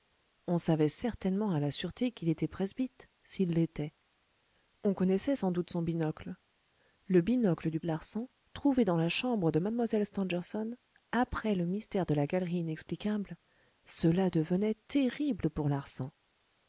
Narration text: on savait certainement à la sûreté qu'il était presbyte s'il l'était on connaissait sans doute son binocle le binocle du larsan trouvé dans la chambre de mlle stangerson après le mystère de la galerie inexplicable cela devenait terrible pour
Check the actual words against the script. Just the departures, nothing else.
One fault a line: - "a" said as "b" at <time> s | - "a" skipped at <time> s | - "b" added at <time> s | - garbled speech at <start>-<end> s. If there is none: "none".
none